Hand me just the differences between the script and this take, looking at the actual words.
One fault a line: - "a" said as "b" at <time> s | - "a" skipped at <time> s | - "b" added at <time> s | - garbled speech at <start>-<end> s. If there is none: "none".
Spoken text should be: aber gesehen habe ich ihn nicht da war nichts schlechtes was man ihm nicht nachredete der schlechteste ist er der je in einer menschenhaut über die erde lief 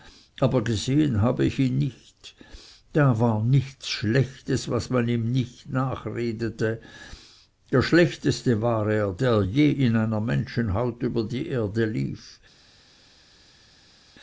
- "ist" said as "war" at 8.6 s